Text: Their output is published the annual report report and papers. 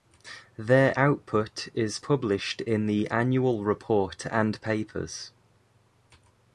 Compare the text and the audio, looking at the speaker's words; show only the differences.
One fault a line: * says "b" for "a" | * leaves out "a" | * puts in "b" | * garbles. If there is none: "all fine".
* puts in "in"
* leaves out "report"